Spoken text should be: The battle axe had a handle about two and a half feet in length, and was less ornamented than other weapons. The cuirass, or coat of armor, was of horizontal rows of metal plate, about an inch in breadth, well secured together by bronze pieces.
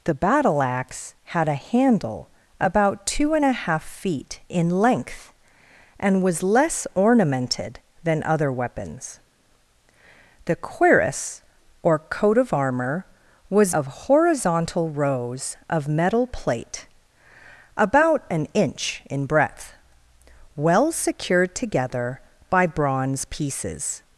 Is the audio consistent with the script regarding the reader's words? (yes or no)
yes